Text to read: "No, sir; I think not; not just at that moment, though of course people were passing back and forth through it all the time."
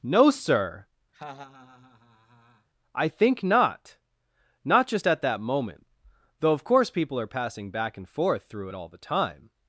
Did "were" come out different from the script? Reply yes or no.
yes